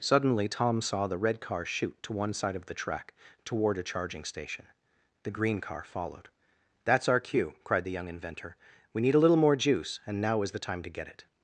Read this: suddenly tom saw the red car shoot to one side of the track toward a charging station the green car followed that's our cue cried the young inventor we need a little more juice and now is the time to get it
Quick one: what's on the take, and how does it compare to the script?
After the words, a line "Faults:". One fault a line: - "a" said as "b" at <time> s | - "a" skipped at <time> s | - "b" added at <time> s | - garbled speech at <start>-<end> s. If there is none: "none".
suddenly tom saw the red car shoot to one side of the track toward a charging station the green car followed that's our cue cried the young inventor we need a little more juice and now is the time to get it
Faults:
none